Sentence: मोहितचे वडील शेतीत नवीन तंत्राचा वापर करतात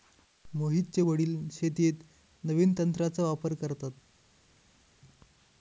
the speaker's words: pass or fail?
pass